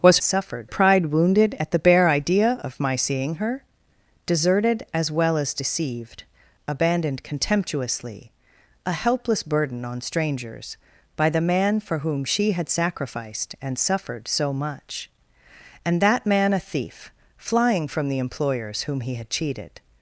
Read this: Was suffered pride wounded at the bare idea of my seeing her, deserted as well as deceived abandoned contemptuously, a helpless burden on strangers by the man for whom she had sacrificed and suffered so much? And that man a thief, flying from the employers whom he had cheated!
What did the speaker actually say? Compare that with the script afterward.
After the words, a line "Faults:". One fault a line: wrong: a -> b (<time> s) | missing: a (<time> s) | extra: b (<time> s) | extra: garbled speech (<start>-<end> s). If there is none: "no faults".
Was suffered pride wounded at the bare idea of my seeing her, deserted as well as deceived abandoned contemptuously, a helpless burden on strangers by the man for whom she had sacrificed and suffered so much? And that man a thief, flying from the employers whom he had cheated!
Faults:
no faults